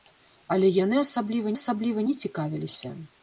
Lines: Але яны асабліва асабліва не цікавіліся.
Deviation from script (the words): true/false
false